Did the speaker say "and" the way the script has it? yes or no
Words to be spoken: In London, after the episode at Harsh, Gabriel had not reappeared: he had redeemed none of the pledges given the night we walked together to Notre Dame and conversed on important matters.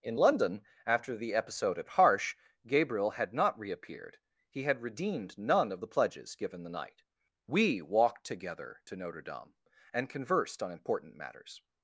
yes